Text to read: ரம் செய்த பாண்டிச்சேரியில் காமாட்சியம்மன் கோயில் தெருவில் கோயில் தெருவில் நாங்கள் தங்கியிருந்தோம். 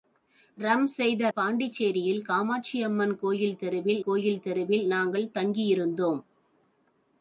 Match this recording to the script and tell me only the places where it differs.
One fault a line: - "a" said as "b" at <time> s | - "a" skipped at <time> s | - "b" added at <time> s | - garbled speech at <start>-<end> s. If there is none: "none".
none